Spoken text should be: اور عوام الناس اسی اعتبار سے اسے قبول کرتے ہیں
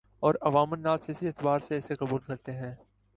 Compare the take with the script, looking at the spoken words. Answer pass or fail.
pass